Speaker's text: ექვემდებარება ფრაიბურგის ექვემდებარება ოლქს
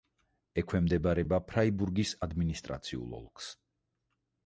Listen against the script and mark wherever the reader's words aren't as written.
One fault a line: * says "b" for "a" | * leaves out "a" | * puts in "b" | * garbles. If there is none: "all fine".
* says "ადმინისტრაციულ" for "ექვემდებარება"